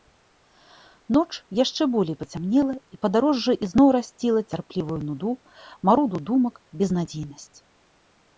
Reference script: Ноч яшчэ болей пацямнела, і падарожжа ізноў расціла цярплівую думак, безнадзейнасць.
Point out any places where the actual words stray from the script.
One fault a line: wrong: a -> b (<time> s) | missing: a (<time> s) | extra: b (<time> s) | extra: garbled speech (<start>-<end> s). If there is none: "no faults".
extra: нуду маруду (5.1 s)